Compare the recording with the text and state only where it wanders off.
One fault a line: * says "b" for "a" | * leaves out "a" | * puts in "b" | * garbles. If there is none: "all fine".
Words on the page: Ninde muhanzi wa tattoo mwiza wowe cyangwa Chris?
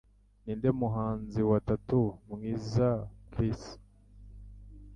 * leaves out "wowe cyangwa"